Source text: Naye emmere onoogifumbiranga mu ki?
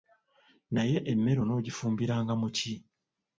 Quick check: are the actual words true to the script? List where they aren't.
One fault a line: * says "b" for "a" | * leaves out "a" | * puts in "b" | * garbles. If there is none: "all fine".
all fine